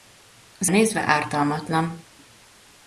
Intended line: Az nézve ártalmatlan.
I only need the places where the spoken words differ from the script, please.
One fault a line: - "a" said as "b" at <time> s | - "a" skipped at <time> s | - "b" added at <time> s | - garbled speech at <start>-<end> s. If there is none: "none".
none